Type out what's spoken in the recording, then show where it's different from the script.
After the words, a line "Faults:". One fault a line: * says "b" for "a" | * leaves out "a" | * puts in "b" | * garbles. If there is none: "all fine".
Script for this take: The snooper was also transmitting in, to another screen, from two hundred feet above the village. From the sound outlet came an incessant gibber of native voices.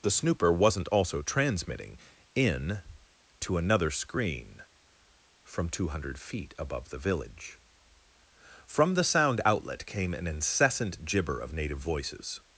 The snooper wasn't also transmitting in, to another screen, from two hundred feet above the village. From the sound outlet came an incessant gibber of native voices.
Faults:
* says "wasn't" for "was"